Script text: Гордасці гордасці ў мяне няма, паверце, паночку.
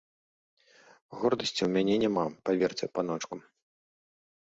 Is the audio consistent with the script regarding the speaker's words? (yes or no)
no